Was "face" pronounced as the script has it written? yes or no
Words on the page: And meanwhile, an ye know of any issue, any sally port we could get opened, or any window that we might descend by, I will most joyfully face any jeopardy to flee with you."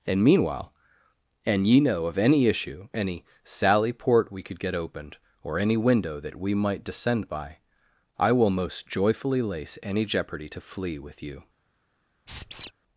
no